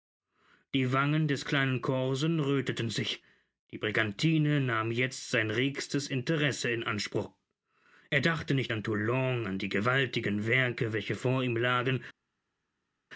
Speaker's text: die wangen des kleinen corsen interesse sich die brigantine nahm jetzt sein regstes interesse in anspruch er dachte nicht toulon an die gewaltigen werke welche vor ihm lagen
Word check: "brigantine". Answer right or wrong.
right